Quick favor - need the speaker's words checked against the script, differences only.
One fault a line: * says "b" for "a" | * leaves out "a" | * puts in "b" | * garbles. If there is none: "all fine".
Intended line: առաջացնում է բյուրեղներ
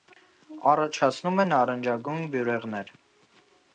* puts in "նարնջագույն"